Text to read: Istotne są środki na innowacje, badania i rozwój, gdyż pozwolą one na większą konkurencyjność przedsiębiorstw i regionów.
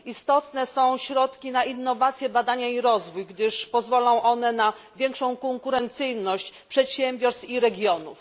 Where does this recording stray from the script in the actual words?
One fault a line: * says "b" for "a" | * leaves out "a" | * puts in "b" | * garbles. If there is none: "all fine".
all fine